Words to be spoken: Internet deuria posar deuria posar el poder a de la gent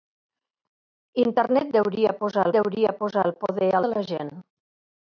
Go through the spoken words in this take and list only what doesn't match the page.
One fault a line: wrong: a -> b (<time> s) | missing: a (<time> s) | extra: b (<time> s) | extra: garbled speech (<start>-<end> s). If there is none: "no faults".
no faults